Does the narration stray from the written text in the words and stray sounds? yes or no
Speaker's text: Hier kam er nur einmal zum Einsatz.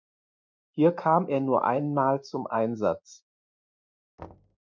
yes